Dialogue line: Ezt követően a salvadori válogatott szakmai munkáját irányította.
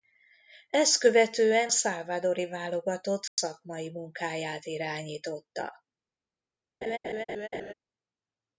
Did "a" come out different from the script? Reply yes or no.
yes